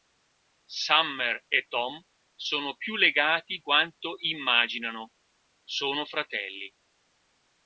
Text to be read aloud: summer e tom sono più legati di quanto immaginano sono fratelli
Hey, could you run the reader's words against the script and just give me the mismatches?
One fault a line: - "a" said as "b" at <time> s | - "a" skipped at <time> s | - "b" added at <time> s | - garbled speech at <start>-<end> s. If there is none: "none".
- "di" skipped at 3.6 s